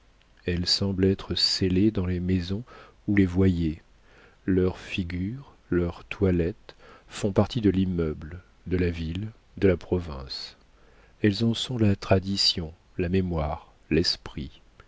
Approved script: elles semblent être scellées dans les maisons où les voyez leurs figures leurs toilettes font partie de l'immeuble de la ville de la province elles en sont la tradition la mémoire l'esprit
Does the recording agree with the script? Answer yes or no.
yes